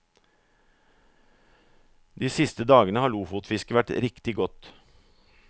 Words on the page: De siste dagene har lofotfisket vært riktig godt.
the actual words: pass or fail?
pass